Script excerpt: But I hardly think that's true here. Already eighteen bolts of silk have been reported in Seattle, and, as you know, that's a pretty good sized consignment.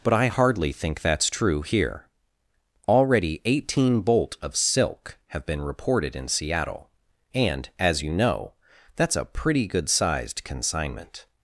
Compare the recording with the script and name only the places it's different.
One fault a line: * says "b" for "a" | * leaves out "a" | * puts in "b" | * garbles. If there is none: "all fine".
* says "bolt" for "bolts"